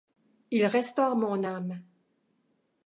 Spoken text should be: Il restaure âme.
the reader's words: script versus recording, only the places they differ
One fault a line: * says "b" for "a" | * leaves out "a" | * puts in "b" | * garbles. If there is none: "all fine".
* puts in "mon"